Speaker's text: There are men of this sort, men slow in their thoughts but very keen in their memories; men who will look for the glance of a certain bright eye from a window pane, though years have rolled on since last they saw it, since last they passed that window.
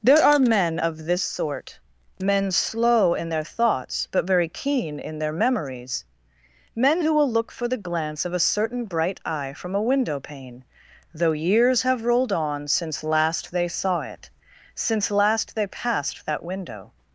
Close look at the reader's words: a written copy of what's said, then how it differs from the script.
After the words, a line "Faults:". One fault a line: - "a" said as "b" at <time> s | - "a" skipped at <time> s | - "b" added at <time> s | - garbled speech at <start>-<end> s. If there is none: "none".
There are men of this sort, men slow in their thoughts but very keen in their memories; men who will look for the glance of a certain bright eye from a window pane, though years have rolled on since last they saw it, since last they passed that window.
Faults:
none